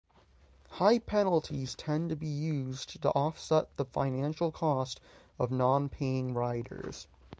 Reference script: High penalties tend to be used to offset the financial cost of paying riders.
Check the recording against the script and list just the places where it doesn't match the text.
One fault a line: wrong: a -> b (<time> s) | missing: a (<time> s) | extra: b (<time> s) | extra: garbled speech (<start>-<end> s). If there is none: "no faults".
extra: non (5.5 s)